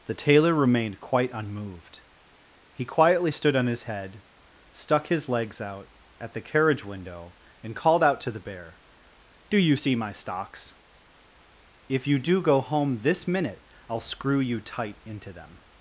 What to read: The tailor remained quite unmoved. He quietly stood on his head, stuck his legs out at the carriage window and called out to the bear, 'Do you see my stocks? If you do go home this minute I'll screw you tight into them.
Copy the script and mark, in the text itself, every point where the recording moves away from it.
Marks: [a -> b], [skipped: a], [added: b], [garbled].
The tailor remained quite unmoved. He quietly stood on his head, stuck his legs out at the carriage window and called out to the bear, 'Do you see my stocks? If you do go home this minute I'll screw you tight into them.